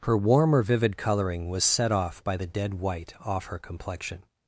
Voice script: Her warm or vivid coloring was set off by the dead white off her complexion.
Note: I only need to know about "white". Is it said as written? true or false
true